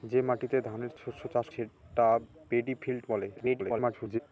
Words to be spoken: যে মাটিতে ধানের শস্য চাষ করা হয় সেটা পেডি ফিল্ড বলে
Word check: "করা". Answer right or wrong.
wrong